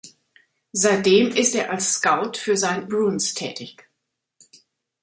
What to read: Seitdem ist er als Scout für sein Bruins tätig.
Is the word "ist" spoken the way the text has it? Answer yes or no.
yes